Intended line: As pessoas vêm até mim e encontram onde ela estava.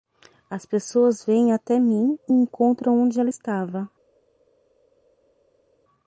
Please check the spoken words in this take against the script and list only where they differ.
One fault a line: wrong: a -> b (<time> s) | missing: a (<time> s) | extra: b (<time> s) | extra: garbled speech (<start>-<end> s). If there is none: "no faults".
no faults